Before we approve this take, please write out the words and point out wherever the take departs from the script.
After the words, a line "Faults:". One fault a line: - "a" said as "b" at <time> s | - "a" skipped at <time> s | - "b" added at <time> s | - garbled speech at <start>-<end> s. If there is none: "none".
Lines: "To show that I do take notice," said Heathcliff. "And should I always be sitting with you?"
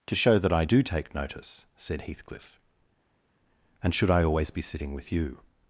"To show that I do take notice," said Heathcliff. "And should I always be sitting with you?"
Faults:
none